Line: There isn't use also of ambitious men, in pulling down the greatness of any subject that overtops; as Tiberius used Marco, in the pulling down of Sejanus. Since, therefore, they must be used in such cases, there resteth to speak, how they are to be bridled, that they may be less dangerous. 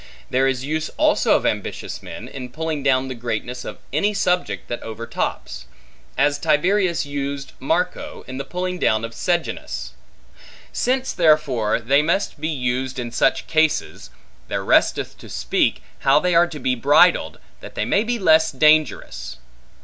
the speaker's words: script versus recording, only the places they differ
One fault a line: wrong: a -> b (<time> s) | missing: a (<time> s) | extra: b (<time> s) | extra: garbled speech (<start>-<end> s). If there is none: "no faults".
wrong: isn't -> is (0.5 s)